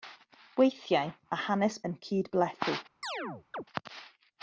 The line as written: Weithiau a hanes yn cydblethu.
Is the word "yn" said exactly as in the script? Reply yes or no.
yes